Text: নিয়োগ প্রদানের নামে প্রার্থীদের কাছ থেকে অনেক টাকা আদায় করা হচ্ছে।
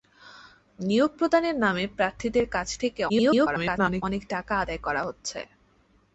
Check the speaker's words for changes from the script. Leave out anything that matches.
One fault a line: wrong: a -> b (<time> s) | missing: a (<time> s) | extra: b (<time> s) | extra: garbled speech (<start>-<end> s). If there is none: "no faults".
extra: garbled speech (3.1-4.0 s)